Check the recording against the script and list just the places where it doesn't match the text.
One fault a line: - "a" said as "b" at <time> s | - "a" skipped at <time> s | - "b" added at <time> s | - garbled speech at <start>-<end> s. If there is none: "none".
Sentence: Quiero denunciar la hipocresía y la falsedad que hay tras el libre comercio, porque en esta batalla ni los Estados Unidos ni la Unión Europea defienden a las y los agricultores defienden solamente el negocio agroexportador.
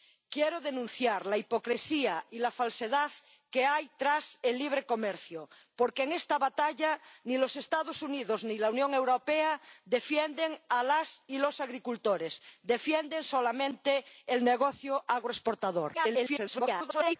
- garbled speech at 15.9-17.2 s